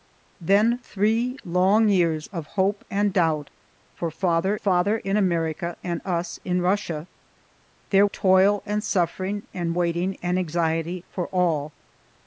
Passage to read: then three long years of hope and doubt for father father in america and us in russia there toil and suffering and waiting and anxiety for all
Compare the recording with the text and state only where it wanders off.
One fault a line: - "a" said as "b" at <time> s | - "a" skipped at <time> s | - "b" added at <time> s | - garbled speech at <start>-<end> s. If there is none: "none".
none